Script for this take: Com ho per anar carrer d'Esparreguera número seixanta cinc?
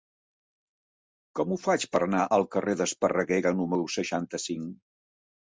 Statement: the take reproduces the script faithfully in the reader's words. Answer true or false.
false